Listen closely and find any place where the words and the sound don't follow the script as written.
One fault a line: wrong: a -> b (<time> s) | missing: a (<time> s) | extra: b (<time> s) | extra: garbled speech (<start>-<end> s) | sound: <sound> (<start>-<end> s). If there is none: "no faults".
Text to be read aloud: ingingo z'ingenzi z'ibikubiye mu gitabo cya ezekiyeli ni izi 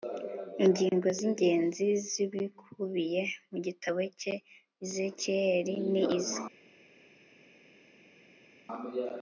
no faults